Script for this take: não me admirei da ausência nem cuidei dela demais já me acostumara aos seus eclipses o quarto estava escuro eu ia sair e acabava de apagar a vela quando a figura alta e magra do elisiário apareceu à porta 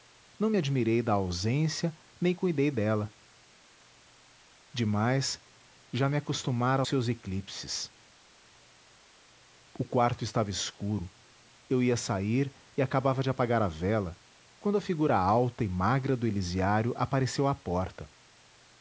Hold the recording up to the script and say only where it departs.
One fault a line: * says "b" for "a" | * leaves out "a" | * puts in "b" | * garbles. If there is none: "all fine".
* leaves out "aos"